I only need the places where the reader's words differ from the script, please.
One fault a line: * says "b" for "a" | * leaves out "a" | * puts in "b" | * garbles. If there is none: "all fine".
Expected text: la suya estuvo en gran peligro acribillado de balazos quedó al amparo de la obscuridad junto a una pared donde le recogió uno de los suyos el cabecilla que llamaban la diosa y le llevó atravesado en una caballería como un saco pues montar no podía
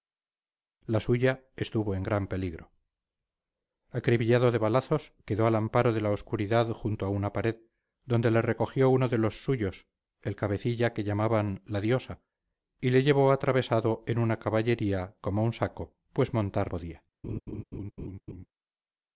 * leaves out "no"